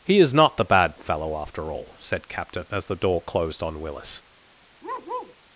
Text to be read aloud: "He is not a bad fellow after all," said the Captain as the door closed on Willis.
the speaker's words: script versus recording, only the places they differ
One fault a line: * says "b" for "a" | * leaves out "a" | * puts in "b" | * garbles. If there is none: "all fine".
* says "the" for "a"
* leaves out "the"